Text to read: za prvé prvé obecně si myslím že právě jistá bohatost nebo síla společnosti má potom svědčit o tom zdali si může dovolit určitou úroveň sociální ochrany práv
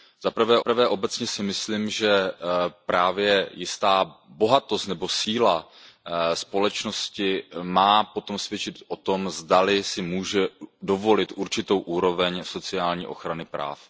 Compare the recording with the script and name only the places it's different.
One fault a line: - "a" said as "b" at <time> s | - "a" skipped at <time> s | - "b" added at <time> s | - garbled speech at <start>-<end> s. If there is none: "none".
none